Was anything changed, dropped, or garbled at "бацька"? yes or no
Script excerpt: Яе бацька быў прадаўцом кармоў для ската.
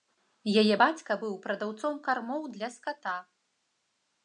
no